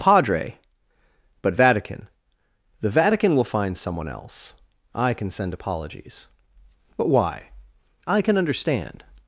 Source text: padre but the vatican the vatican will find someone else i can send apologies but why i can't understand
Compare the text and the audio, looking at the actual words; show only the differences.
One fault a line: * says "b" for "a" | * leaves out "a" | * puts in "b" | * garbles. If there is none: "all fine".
* leaves out "the"
* says "can" for "can't"